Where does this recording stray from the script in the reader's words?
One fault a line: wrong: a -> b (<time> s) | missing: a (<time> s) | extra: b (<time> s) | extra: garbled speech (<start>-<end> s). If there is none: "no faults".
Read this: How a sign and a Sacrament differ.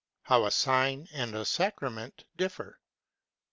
no faults